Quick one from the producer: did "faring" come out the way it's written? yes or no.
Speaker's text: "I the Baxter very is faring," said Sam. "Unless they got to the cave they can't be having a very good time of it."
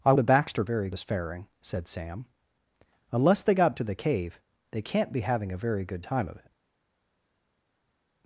yes